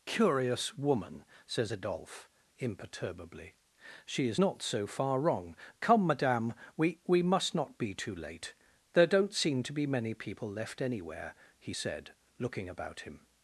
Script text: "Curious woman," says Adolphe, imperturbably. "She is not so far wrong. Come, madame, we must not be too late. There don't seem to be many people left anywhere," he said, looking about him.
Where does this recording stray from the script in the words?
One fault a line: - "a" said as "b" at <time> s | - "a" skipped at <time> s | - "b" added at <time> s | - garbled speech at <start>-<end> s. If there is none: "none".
- "we" added at 7.1 s